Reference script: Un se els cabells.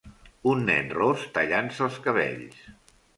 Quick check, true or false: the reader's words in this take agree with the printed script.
false